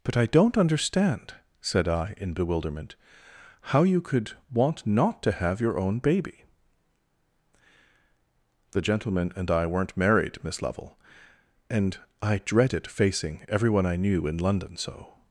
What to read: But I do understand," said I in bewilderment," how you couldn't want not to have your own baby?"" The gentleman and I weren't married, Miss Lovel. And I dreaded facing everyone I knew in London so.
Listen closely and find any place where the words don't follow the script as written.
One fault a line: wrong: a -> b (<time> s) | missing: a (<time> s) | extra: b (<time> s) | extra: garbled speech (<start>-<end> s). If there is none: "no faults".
wrong: do -> don't (0.2 s)
wrong: couldn't -> could (4.0 s)